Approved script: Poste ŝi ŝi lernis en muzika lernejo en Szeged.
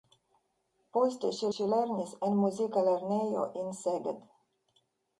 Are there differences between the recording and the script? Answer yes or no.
no